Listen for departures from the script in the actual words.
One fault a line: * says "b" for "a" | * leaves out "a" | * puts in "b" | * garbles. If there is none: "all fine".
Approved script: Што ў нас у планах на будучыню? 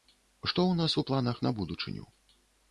all fine